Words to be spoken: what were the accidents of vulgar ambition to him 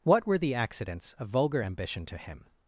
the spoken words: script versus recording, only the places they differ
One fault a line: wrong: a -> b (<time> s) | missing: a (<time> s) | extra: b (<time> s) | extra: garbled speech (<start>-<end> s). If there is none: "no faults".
no faults